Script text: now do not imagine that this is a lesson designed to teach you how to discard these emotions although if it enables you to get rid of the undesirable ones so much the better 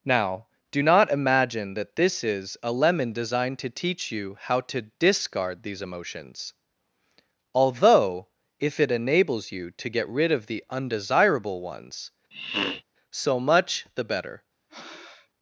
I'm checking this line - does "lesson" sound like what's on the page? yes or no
no